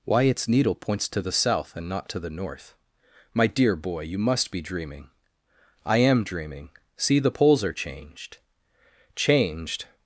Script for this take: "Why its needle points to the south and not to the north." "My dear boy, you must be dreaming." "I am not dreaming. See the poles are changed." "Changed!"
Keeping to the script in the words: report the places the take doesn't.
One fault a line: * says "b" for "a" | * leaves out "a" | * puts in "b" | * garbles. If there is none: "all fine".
* leaves out "not"